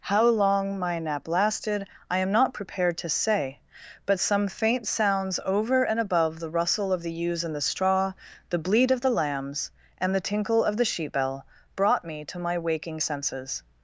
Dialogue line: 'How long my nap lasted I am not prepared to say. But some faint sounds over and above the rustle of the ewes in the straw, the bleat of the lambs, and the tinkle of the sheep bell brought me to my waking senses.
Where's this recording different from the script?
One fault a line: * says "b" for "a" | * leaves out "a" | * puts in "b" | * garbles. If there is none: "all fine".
all fine